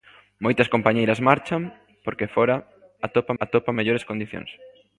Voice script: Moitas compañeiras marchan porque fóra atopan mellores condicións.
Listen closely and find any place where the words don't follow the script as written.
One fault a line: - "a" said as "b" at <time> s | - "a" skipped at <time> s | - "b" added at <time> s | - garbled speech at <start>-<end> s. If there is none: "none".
- "atopan" added at 3.4 s